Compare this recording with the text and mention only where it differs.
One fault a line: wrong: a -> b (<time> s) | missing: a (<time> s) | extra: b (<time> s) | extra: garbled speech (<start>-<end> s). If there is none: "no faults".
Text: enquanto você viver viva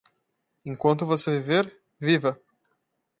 no faults